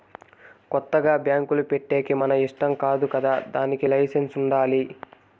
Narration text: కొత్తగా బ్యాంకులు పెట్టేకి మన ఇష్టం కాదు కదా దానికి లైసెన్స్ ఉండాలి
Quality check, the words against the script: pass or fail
pass